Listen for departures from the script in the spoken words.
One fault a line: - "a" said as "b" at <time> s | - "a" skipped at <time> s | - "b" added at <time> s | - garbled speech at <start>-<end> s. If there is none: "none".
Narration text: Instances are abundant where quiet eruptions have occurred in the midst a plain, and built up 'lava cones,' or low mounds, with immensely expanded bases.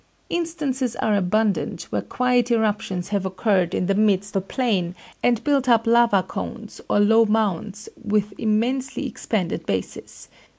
none